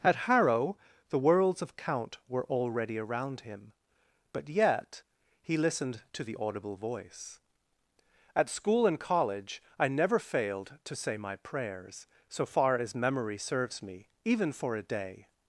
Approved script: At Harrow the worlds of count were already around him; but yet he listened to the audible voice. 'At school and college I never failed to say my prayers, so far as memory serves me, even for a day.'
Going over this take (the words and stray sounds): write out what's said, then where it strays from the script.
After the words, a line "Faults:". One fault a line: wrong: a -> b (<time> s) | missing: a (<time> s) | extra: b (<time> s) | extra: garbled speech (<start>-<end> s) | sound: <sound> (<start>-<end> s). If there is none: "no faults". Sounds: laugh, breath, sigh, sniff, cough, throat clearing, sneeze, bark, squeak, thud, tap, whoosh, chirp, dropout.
At Harrow the worlds of count were already around him; but yet he listened to the audible voice. 'At school and college I never failed to say my prayers, so far as memory serves me, even for a day.'
Faults:
no faults